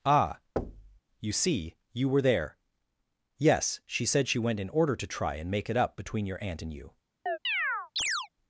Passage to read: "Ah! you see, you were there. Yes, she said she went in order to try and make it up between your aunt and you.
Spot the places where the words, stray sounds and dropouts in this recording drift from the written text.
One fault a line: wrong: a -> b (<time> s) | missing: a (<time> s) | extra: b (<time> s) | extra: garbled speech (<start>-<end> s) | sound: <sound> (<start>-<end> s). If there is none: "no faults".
sound: thud (0.6-1.0 s)
sound: chirp (7.3-8.3 s)